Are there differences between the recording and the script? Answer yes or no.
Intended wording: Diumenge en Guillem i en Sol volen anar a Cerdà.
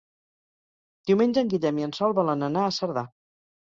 no